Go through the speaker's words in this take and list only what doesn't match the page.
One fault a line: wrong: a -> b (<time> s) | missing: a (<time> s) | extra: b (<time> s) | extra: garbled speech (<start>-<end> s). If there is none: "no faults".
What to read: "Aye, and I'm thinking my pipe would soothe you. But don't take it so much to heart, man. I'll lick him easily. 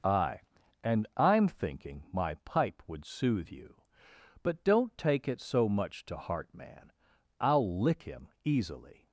no faults